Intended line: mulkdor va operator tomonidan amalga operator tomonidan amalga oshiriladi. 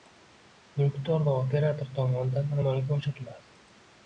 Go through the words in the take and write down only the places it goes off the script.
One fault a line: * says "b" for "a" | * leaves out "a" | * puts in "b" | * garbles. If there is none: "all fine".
* leaves out "operator tomonidan amalga"